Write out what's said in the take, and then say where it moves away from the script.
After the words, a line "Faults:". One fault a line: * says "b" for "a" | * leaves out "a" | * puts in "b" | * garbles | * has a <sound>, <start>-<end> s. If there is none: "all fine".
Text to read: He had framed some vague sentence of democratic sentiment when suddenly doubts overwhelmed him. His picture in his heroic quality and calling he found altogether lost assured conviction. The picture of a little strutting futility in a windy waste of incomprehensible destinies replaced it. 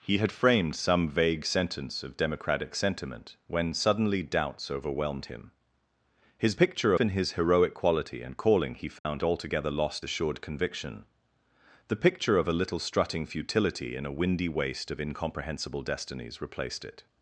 He had framed some vague sentence of democratic sentiment when suddenly doubts overwhelmed him. His picture in his heroic quality and calling he found altogether lost assured conviction. The picture of a little strutting futility in a windy waste of incomprehensible destinies replaced it.
Faults:
* has a dropout, 9.0-9.1 s